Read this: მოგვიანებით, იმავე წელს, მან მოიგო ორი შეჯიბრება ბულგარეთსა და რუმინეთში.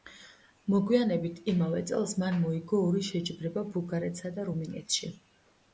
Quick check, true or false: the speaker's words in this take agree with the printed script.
true